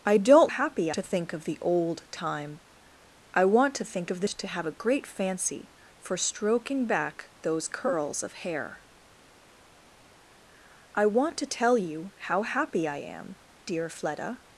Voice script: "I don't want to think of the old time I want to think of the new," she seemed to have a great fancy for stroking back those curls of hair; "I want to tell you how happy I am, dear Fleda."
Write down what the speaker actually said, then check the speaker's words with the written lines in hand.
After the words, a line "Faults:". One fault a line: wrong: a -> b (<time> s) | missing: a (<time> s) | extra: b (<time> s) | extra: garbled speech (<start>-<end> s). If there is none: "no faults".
"I don't happy to think of the old time I want to think of the to have a great fancy for stroking back those curls of hair; "I want to tell you how happy I am, dear Fleda."
Faults:
wrong: want -> happy (0.5 s)
missing: new she seemed (4.3 s)